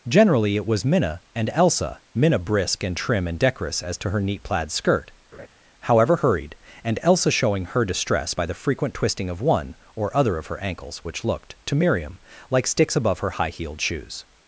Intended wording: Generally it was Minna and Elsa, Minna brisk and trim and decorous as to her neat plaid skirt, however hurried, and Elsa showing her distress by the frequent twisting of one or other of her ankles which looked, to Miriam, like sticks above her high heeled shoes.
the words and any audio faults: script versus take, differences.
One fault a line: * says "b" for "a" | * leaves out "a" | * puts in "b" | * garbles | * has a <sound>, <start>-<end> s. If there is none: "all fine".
* has a laugh, 5.3-5.5 s